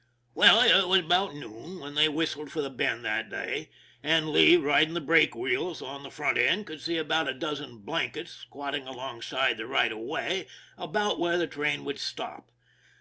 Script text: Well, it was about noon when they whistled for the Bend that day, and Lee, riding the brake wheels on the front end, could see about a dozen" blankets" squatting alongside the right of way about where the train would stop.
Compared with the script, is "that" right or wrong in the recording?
right